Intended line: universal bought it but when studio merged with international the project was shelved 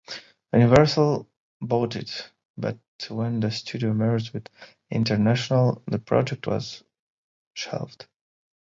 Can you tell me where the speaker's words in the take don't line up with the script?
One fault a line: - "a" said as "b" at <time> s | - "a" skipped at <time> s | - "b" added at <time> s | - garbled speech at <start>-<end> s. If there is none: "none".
- "the" added at 3.4 s